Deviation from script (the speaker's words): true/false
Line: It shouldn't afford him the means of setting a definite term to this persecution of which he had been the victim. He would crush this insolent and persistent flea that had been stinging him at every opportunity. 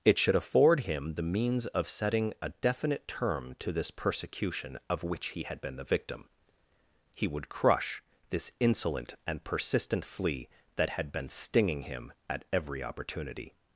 true